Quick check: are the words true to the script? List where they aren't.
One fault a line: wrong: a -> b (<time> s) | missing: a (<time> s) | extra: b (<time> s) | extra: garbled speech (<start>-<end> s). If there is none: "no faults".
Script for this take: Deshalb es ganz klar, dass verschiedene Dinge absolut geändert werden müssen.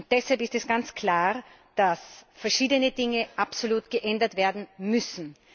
extra: ist (0.4 s)